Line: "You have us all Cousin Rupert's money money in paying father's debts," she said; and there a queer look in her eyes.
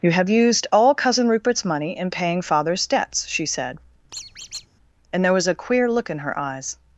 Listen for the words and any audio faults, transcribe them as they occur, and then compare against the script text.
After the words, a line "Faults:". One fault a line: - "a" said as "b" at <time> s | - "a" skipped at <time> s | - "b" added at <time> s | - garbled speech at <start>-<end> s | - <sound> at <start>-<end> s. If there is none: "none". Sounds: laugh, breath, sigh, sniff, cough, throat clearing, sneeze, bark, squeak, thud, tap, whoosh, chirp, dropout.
"You have used all Cousin Rupert's money in paying father's debts," she said; and there was a queer look in her eyes.
Faults:
- "us" said as "used" at 0.3 s
- "money" skipped at 1.9 s
- squeak at 4.1-4.7 s
- "was" added at 5.3 s